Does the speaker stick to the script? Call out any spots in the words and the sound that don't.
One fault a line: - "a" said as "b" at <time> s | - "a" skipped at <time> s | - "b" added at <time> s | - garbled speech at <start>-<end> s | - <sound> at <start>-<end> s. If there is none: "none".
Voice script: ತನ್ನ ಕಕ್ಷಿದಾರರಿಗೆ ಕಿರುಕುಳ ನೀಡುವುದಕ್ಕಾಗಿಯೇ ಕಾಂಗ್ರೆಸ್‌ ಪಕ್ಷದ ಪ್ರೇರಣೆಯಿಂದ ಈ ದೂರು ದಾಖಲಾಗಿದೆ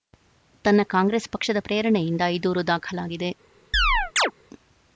- "ಕಕ್ಷಿದಾರರಿಗೆ ಕಿರುಕುಳ ನೀಡುವುದಕ್ಕಾಗಿಯೇ" skipped at 0.8 s
- chirp at 3.7-4.3 s